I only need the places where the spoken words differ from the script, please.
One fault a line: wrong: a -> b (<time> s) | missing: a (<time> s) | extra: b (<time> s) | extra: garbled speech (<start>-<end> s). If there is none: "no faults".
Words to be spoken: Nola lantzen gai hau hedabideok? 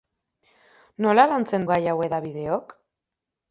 no faults